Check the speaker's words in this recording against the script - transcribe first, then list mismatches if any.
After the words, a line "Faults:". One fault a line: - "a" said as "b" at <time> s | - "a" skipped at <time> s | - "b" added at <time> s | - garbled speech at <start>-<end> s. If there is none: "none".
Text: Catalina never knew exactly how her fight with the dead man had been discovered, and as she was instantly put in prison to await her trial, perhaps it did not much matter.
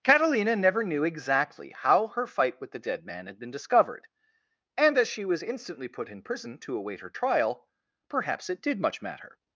Catalina never knew exactly how her fight with the dead man had been discovered, and as she was instantly put in prison to await her trial, perhaps it did much matter.
Faults:
- "not" skipped at 8.8 s